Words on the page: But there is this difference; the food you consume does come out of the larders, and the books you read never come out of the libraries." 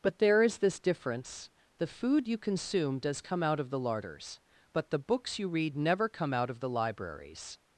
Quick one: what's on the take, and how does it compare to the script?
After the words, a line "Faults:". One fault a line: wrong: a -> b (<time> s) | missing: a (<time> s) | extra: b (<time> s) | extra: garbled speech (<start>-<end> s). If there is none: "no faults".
But there is this difference; the food you consume does come out of the larders, but the books you read never come out of the libraries."
Faults:
wrong: and -> but (4.7 s)